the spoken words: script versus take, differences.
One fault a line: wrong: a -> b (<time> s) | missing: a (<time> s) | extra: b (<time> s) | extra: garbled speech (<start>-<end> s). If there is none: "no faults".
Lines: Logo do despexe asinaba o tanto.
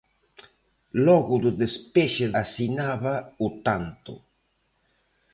no faults